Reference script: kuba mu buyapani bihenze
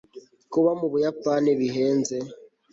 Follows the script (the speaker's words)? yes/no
yes